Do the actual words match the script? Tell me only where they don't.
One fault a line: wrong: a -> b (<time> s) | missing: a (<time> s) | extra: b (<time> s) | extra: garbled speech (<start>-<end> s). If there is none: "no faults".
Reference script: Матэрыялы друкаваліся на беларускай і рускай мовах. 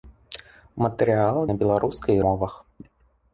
missing: друкаваліся (1.4 s)
missing: рускай (2.2 s)